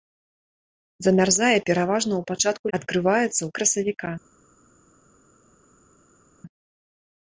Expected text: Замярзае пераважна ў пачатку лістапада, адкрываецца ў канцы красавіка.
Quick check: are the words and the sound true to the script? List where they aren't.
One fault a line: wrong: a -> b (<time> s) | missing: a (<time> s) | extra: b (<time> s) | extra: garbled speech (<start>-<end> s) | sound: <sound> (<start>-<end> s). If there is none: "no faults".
missing: лістапада (2.6 s)
missing: канцы (3.5 s)